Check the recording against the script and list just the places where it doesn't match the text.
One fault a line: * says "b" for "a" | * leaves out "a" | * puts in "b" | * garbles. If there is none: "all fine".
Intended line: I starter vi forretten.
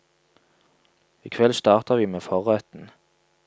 * puts in "kveld"
* puts in "med"